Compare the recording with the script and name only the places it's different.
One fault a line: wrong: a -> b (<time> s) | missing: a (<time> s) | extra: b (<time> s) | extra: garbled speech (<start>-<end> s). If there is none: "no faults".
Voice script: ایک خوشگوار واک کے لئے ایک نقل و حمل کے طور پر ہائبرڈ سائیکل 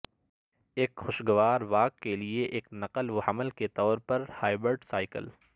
no faults